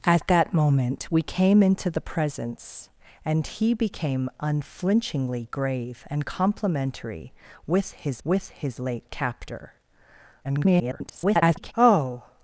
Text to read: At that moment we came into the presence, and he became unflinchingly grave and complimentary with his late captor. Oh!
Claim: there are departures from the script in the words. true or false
true